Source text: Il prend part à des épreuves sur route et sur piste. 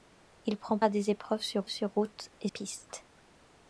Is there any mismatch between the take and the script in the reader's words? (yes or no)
yes